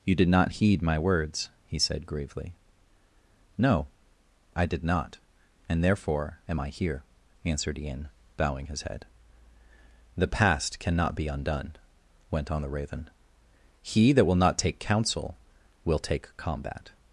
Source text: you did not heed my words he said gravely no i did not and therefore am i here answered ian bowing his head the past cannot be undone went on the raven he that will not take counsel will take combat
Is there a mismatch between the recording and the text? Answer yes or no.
no